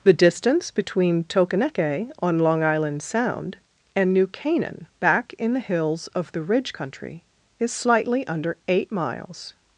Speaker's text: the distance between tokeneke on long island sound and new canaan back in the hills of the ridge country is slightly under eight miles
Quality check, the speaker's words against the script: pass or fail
pass